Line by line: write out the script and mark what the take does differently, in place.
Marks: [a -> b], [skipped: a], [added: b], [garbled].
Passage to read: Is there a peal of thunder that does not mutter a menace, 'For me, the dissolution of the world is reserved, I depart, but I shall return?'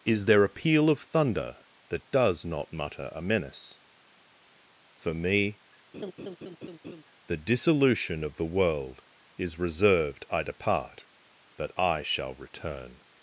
Is there a peal of thunder that does not mutter a menace, 'For me, the dissolution of the world is reserved, I depart, but I shall return?'